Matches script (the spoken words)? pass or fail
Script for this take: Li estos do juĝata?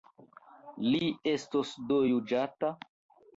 pass